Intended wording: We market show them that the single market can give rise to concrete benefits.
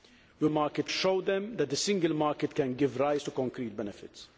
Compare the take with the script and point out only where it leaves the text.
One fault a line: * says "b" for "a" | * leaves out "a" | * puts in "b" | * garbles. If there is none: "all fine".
all fine